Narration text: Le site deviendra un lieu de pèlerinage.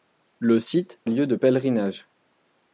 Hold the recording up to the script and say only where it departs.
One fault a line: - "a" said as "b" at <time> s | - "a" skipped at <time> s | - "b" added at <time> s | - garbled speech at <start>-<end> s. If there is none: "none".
- "deviendra" skipped at 1.0 s